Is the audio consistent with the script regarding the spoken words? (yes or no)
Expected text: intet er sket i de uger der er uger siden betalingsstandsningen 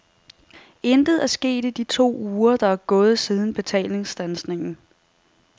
no